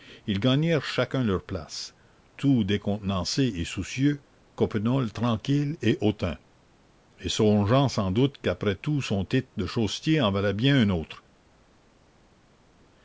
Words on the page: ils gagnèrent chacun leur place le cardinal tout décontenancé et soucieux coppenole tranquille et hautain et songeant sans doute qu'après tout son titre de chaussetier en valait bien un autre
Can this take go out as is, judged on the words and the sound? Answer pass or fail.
fail